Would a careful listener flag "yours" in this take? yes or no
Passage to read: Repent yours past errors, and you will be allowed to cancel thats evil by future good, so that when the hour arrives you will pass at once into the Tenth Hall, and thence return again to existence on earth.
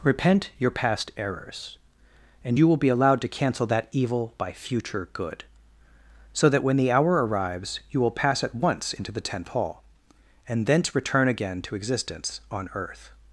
yes